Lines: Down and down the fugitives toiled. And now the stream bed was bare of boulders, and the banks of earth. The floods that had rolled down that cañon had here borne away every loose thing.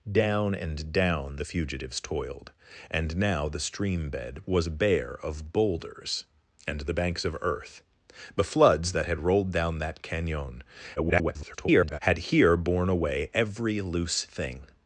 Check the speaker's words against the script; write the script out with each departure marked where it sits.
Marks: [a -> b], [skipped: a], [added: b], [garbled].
Down and down the fugitives toiled. And now the stream bed was bare of boulders, and the banks of earth. The floods that had rolled down that cañon [garbled] had here borne away every loose thing.